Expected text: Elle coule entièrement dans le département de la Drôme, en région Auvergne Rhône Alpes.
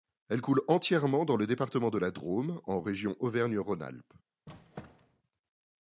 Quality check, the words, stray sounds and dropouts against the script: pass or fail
fail